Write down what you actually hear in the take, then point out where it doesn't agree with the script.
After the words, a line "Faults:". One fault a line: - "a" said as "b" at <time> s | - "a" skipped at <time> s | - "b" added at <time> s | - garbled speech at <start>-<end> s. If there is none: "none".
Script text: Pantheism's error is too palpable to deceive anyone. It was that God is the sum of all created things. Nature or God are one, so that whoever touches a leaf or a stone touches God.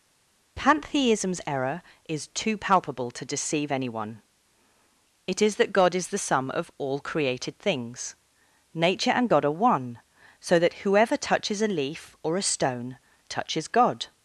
Pantheism's error is too palpable to deceive anyone. It is that God is the sum of all created things. Nature and God are one, so that whoever touches a leaf or a stone touches God.
Faults:
- "was" said as "is" at 5.4 s
- "or" said as "and" at 9.1 s